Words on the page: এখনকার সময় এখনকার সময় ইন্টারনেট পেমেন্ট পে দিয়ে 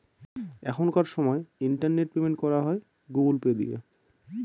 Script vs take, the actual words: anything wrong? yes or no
yes